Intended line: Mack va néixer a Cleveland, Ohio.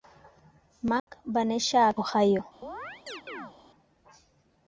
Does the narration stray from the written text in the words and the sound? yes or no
yes